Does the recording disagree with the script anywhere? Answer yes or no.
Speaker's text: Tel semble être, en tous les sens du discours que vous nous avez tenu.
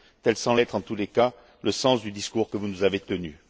yes